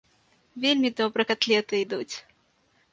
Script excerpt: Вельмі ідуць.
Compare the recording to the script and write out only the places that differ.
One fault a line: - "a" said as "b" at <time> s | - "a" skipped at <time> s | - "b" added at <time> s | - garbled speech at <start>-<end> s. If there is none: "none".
- "добра катлеты" added at 1.0 s